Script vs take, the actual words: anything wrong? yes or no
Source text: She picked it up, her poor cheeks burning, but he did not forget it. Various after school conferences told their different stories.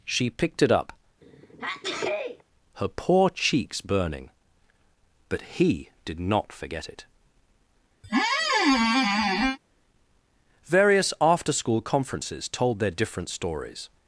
no